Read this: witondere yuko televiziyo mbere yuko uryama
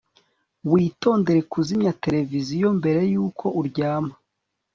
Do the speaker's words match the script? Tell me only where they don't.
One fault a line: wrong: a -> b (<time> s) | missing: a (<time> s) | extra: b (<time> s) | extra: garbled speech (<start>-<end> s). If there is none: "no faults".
wrong: yuko -> kuzimya (1.5 s)